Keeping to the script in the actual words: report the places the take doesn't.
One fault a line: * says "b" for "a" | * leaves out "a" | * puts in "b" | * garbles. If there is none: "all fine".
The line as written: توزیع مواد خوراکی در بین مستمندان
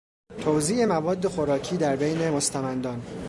all fine